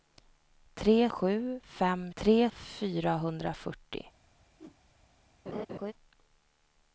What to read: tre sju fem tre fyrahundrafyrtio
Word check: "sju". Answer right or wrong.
right